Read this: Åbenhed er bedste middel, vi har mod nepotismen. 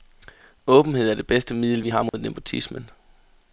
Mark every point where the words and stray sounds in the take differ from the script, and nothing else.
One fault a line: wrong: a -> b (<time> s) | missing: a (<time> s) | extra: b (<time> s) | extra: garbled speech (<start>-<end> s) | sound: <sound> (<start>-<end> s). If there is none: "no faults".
extra: det (1.1 s)
sound: dropout (2.1-2.1 s)